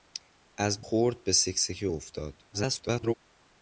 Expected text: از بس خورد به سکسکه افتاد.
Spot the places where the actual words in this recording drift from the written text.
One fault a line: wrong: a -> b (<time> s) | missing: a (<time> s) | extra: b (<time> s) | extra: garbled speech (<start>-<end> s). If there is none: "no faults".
missing: بس (0.8 s)
extra: garbled speech (2.5-3.1 s)